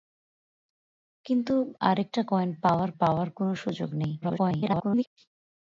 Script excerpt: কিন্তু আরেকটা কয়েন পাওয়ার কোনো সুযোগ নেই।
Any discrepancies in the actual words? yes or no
yes